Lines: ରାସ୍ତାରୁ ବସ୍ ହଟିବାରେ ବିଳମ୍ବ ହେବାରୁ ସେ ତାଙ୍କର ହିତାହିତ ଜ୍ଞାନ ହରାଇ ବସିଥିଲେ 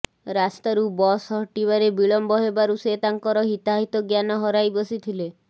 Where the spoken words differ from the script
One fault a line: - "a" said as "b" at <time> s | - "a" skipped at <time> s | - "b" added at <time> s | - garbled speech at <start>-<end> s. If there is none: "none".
none